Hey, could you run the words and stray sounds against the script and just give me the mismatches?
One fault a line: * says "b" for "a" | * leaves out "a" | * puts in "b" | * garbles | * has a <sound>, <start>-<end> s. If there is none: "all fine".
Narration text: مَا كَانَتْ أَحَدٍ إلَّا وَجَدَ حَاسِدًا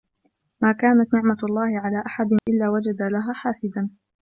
* puts in "نِعْمَةُ اللَّهِ عَلَى"
* has a dropout, 2.4-2.5 s
* puts in "لَهَا"